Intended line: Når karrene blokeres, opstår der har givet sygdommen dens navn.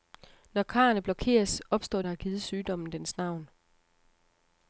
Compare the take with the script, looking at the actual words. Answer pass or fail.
pass